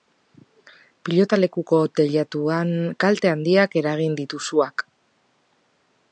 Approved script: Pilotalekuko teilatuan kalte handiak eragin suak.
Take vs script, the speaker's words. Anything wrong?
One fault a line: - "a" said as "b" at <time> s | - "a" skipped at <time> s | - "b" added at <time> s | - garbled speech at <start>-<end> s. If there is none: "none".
- "ditu" added at 4.2 s